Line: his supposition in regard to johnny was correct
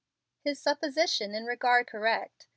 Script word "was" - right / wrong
wrong